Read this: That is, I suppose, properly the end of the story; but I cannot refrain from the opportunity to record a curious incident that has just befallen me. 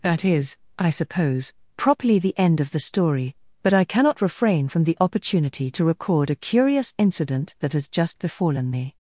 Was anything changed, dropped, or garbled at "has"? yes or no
no